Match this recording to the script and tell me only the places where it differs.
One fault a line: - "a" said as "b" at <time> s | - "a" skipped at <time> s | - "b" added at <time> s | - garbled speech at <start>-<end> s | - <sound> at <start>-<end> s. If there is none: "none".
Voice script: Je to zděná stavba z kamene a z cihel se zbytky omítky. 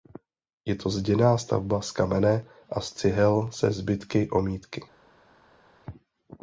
none